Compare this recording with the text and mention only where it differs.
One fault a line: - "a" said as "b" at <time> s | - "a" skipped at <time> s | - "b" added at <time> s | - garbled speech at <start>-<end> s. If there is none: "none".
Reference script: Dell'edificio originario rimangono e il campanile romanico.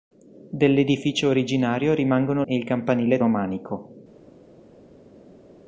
none